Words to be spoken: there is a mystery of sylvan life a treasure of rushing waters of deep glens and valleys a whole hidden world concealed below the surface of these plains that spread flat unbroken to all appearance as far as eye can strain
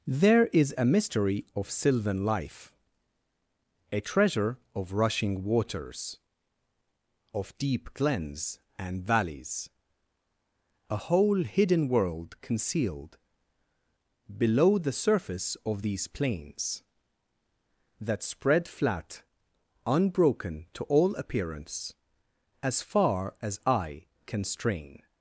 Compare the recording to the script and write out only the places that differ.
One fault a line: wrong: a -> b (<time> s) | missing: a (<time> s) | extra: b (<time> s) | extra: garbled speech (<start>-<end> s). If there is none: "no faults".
no faults